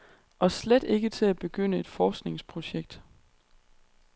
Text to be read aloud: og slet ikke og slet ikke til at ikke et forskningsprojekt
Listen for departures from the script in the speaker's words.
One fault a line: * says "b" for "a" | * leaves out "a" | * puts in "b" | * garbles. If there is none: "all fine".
* leaves out "og slet ikke"
* says "begynde" for "ikke"